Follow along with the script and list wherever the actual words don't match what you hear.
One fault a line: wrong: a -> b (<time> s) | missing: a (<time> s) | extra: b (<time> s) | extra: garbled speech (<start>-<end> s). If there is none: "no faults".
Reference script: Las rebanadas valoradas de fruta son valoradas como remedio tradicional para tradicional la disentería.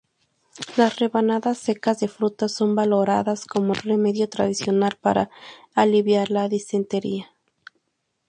wrong: valoradas -> secas (1.6 s)
wrong: tradicional -> aliviar (5.8 s)